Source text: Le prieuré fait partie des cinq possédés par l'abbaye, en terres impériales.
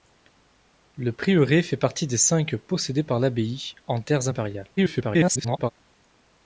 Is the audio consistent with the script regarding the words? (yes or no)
no